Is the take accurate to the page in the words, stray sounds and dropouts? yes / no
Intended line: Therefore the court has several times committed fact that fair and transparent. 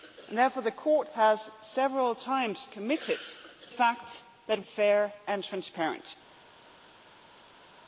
yes